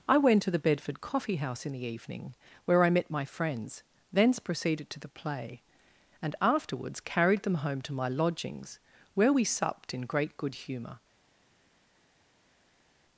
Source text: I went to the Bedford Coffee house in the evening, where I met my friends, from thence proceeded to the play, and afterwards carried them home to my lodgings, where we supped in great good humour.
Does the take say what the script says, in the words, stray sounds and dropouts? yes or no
no